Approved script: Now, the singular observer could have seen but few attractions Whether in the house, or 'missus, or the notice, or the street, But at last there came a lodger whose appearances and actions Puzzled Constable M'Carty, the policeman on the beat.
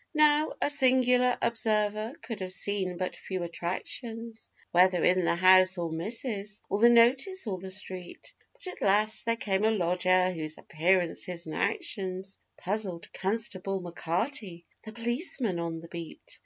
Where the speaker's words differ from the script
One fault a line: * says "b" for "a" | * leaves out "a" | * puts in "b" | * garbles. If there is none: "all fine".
* says "a" for "the"